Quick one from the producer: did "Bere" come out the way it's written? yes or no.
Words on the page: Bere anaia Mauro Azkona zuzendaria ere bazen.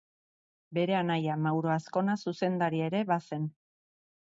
yes